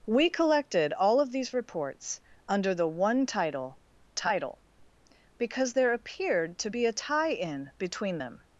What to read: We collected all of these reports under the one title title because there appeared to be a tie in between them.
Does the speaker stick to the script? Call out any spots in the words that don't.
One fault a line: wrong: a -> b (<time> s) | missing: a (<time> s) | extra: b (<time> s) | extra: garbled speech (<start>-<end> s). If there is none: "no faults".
no faults